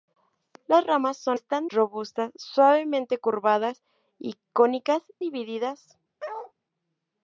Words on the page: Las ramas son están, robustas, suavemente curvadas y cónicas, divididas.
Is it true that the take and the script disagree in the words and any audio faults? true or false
true